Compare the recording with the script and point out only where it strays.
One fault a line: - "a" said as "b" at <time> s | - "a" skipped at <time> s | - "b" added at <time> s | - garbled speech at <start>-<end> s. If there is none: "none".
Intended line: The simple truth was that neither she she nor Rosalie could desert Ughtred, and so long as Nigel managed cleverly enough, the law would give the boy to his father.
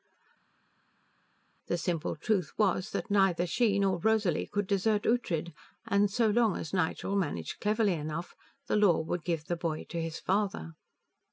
- "she" skipped at 3.8 s